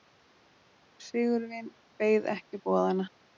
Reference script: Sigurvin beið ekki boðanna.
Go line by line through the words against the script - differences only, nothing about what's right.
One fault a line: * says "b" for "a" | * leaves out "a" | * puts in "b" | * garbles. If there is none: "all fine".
all fine